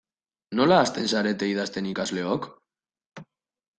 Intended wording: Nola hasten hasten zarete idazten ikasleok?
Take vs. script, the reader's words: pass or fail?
fail